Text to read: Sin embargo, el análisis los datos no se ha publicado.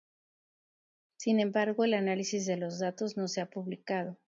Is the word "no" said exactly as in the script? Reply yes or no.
yes